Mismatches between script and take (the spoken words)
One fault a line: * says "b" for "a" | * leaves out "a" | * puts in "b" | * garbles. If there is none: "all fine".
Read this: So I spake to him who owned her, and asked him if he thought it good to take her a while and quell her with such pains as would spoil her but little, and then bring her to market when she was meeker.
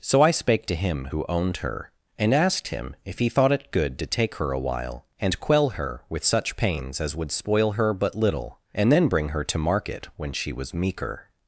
all fine